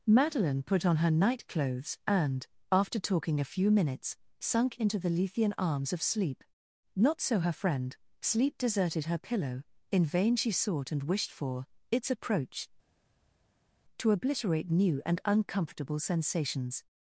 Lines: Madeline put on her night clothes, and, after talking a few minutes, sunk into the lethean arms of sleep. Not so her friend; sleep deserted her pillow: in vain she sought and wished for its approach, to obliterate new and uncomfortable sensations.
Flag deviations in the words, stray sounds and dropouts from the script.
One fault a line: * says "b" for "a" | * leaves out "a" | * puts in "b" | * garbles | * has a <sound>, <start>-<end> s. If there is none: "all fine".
all fine